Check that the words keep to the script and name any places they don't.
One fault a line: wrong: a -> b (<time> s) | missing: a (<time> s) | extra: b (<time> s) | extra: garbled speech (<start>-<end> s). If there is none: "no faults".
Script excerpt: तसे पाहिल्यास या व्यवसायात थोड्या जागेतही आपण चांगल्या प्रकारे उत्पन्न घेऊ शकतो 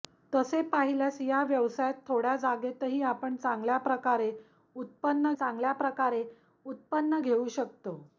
extra: चांगल्या प्रकारे उत्पन्न (5.3 s)